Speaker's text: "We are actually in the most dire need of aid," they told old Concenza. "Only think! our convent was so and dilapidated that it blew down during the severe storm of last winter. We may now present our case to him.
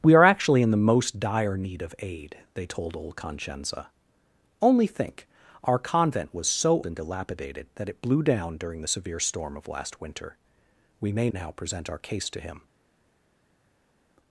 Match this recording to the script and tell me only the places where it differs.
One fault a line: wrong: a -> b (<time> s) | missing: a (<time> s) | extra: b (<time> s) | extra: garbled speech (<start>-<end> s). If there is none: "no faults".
no faults